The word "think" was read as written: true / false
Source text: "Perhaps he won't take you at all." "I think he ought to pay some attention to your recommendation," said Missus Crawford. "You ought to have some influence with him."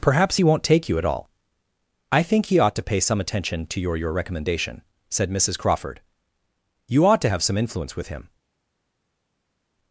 true